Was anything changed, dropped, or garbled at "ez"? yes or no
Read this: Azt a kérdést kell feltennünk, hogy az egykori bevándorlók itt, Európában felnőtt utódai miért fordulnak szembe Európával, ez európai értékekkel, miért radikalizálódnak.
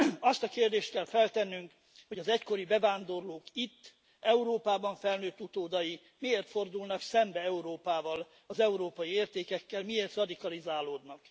yes